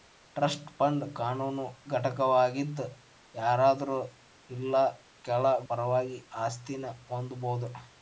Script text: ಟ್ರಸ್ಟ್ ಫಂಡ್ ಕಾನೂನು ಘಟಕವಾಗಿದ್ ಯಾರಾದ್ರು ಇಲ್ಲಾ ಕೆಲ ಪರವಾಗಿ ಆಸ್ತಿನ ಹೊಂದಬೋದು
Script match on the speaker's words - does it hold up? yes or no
yes